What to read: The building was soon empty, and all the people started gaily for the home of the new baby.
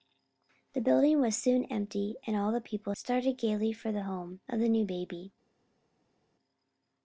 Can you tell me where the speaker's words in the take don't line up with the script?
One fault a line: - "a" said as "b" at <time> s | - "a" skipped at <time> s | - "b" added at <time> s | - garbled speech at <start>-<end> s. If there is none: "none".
none